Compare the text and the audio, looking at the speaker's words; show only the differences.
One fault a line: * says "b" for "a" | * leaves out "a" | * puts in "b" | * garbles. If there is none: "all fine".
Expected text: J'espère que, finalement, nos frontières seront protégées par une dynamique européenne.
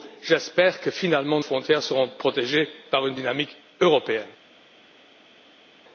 * leaves out "nos"